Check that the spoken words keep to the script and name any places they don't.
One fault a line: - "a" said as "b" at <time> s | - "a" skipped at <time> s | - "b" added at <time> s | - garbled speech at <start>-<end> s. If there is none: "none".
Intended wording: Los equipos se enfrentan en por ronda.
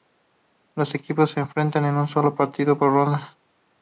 - "un solo partido" added at 1.9 s